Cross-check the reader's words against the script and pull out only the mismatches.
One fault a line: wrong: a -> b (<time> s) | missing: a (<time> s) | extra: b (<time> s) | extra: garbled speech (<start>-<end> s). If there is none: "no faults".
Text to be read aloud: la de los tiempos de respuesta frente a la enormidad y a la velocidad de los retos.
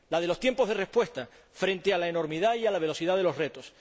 no faults